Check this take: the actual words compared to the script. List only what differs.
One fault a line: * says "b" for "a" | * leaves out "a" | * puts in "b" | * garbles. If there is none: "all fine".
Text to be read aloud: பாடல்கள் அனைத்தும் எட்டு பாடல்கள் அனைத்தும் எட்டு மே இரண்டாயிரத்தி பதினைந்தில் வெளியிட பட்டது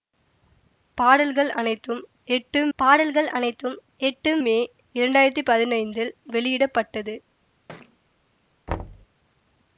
all fine